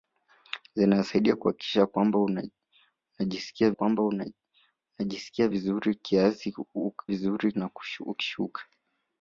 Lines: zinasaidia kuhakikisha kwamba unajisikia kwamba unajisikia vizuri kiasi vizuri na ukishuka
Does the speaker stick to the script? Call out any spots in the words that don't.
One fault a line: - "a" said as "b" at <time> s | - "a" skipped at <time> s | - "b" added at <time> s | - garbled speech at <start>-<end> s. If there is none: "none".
none